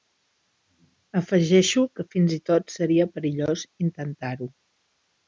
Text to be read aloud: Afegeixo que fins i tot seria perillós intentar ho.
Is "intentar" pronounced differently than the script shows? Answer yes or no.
no